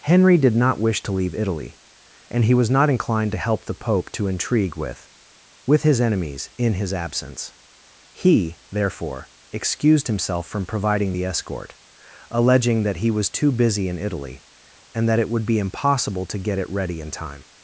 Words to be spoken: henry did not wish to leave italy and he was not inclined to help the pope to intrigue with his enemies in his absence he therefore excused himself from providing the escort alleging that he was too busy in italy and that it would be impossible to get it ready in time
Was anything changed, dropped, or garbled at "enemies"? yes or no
no